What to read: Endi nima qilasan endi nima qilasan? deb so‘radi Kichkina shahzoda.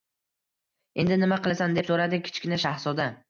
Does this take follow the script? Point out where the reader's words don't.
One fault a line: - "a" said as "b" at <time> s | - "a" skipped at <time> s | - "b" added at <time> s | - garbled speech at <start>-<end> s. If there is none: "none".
- "endi nima qilasan" skipped at 1.8 s